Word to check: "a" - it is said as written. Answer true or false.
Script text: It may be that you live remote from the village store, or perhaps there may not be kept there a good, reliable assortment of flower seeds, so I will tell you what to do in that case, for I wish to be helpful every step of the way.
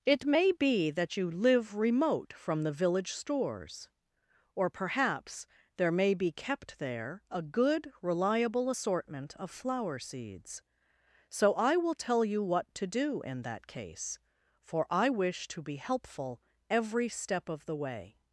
true